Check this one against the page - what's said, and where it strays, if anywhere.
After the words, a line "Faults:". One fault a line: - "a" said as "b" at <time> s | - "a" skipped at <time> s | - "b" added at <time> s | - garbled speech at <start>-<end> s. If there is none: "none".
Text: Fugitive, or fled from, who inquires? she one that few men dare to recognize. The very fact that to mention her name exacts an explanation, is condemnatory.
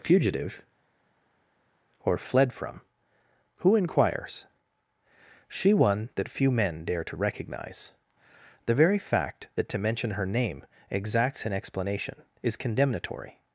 Fugitive, or fled from, who inquires? she one that few men dare to recognize. The very fact that to mention her name exacts an explanation, is condemnatory.
Faults:
none